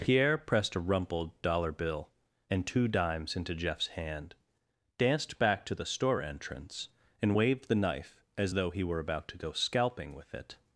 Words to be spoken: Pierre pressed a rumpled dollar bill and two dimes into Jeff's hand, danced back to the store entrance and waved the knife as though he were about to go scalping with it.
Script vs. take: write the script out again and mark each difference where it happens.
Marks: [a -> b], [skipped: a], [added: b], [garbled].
Pierre pressed a rumpled dollar bill and two dimes into Jeff's hand, danced back to the store entrance and waved the knife as though he were about to go scalping with it.